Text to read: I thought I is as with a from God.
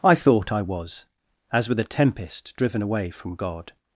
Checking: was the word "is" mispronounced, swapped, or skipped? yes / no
yes